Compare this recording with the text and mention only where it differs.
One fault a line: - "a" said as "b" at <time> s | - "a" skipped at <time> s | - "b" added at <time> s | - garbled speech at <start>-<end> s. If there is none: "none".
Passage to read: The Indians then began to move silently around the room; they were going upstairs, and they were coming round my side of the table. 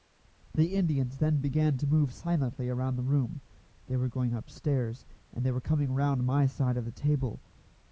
none